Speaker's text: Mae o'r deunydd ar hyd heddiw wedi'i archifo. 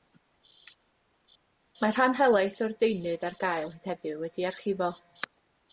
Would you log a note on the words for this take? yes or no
yes